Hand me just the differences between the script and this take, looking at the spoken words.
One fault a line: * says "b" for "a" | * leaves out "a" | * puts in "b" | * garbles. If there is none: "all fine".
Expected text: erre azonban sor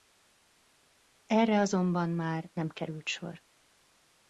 * puts in "már nem került"